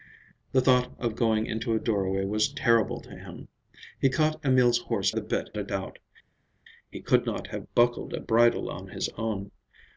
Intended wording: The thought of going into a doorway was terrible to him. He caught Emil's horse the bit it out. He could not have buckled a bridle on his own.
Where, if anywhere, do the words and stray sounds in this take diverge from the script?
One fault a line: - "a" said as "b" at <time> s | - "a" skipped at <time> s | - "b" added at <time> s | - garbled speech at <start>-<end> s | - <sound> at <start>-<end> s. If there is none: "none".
none